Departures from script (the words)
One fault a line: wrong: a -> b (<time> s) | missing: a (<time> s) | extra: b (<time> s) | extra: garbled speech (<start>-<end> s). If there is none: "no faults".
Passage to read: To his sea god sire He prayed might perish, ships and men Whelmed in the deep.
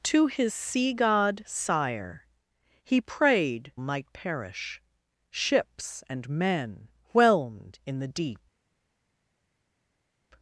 no faults